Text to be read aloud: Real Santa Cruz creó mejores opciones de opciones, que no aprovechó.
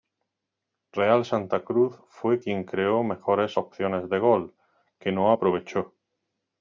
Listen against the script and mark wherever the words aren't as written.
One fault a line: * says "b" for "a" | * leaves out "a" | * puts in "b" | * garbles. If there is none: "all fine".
* puts in "fue quien"
* says "gol" for "opciones"